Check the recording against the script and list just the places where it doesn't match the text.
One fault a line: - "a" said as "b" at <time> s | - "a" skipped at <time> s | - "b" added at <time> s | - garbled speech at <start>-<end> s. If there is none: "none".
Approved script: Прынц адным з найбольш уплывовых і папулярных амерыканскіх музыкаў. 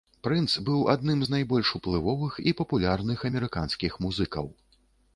- "быў" added at 0.7 s